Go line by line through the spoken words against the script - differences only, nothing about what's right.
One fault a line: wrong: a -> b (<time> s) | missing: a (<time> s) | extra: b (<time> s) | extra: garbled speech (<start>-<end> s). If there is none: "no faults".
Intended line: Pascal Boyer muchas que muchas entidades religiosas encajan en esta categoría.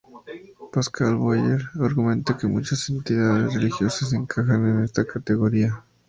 wrong: muchas -> argumenta (1.8 s)